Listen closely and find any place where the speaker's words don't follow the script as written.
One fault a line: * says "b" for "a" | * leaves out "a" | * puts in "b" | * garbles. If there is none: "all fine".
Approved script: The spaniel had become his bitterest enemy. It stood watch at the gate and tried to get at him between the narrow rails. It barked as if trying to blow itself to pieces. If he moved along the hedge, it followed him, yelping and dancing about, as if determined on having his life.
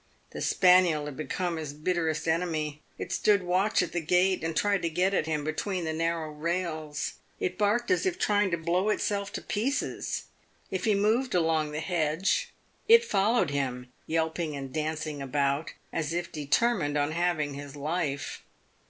all fine